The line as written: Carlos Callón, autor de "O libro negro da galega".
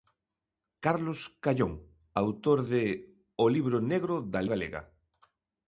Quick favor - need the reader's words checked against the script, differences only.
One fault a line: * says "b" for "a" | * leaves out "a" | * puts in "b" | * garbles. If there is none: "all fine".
all fine